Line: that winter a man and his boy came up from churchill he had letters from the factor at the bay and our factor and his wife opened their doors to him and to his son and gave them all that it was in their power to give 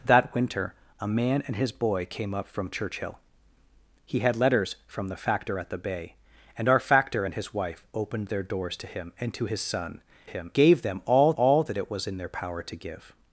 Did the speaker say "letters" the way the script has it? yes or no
yes